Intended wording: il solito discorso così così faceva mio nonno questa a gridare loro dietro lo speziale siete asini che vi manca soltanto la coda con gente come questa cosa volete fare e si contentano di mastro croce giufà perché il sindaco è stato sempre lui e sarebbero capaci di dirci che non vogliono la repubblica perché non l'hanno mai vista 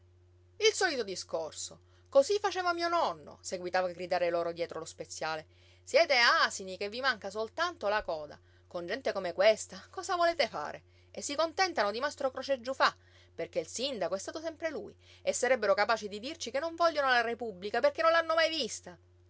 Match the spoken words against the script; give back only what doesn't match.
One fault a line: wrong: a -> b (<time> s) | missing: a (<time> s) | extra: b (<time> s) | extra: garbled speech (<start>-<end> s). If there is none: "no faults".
missing: così (2.4 s)
wrong: questa -> seguitava (3.4 s)